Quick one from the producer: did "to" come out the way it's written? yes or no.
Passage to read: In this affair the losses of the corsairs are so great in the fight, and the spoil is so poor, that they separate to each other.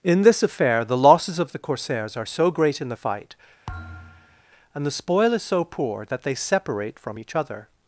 no